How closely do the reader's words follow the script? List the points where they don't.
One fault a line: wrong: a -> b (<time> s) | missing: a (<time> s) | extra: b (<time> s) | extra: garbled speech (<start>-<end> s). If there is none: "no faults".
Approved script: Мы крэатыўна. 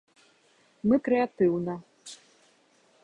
no faults